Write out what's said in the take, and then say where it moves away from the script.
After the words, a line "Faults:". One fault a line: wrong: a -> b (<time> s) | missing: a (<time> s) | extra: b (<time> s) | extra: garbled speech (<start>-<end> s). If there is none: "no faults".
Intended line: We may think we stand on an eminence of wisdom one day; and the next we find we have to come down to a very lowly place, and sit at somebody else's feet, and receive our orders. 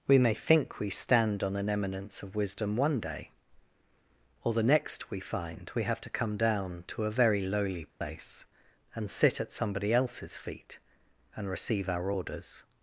We may think we stand on an eminence of wisdom one day; or the next we find we have to come down to a very lowly place, and sit at somebody else's feet, and receive our orders.
Faults:
wrong: and -> or (4.4 s)